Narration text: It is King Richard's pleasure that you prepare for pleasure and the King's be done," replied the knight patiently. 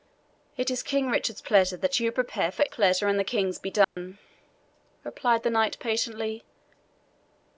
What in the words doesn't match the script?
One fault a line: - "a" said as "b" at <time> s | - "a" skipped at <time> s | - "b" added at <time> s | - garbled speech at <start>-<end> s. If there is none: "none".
none